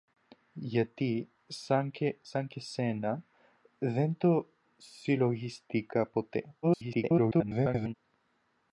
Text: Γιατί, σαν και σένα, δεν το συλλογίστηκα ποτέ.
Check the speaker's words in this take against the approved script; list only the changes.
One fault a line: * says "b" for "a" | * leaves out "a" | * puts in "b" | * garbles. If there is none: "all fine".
* garbles